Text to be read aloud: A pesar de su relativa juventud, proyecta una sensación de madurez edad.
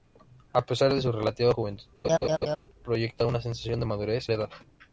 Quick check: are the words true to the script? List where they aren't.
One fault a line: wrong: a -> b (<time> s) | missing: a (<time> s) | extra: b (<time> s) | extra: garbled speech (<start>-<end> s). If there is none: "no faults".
no faults